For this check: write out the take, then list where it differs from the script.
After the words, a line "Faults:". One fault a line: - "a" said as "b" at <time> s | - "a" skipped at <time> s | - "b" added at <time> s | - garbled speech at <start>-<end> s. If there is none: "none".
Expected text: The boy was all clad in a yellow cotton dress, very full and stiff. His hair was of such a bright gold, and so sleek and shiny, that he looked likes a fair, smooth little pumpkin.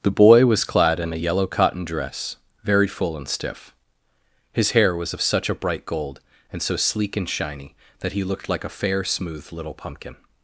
The boy was clad in a yellow cotton dress, very full and stiff. His hair was of such a bright gold, and so sleek and shiny, that he looked like a fair, smooth little pumpkin.
Faults:
- "all" skipped at 0.6 s
- "likes" said as "like" at 8.5 s